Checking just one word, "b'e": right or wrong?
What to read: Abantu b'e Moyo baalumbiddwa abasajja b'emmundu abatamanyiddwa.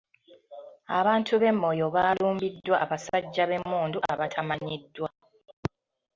right